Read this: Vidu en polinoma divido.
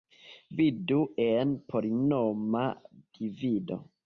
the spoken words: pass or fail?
pass